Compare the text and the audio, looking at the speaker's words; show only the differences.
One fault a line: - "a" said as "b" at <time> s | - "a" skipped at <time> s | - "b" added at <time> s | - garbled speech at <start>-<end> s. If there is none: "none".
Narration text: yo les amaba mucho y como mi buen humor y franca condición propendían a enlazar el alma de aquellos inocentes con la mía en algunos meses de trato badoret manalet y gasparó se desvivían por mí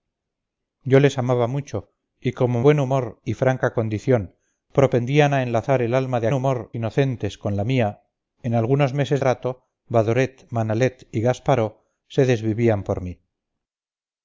- "mi" skipped at 2.6 s
- "aquellos" said as "humor" at 6.3 s
- "de" skipped at 9.2 s